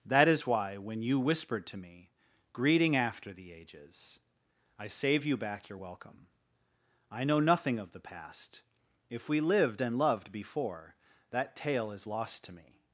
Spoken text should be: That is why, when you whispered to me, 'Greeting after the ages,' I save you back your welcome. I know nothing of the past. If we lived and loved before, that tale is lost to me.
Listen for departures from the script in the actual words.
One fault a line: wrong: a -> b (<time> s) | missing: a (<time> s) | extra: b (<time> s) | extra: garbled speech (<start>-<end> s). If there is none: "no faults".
no faults